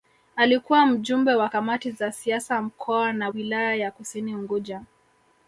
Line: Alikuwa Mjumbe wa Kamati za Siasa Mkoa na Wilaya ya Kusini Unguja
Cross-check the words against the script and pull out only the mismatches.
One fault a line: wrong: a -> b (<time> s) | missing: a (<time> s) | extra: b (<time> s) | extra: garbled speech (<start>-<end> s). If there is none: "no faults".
no faults